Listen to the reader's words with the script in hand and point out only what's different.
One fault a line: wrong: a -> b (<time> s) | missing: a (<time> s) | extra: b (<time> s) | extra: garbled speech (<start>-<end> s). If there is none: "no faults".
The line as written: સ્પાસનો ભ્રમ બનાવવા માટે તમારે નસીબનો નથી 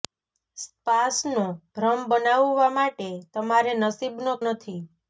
no faults